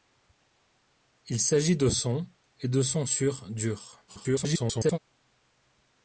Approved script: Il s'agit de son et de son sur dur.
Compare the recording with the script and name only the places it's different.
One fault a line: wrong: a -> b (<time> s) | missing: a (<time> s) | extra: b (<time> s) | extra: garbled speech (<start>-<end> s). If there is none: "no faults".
extra: garbled speech (4.1-5.0 s)